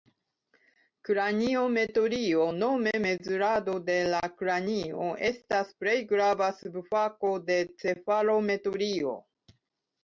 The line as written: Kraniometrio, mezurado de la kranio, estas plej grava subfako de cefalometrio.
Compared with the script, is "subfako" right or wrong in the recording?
right